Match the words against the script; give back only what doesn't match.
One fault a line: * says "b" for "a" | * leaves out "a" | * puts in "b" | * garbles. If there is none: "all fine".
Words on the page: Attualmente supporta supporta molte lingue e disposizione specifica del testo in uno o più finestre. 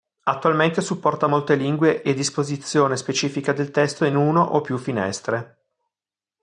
* leaves out "supporta"